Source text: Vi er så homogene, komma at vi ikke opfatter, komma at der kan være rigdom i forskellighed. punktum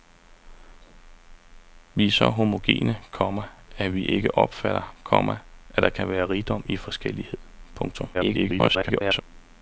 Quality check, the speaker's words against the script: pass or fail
fail